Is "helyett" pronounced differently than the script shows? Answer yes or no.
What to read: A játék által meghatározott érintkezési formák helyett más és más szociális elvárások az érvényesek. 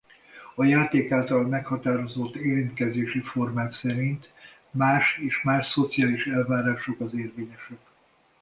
yes